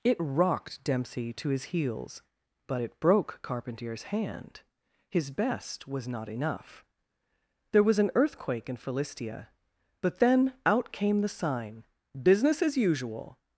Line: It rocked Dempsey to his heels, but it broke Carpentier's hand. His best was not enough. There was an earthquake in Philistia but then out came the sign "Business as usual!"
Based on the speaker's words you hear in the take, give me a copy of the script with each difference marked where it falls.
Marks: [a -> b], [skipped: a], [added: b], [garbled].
It rocked Dempsey to his heels, but it broke Carpentier's hand. His best was not enough. There was an earthquake in Philistia but then out came the sign "Business as usual!"